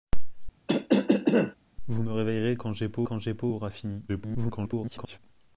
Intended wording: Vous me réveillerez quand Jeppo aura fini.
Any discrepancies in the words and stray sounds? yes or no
yes